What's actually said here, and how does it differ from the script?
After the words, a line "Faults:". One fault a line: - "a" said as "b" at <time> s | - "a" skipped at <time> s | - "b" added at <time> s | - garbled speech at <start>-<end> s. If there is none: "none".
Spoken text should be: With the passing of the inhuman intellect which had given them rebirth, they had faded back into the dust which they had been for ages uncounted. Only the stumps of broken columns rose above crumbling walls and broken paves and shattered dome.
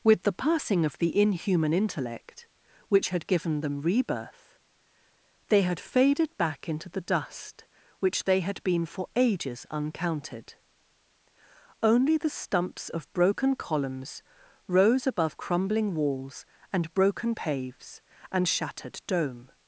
With the passing of the inhuman intellect which had given them rebirth, they had faded back into the dust which they had been for ages uncounted. Only the stumps of broken columns rose above crumbling walls and broken paves and shattered dome.
Faults:
none